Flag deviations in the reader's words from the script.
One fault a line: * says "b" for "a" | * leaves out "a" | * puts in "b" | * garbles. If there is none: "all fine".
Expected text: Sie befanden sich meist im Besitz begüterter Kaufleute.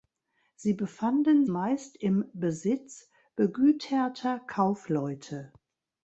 * leaves out "sich"